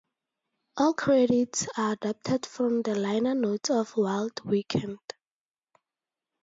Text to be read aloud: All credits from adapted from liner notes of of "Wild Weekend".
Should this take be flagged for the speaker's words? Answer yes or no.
yes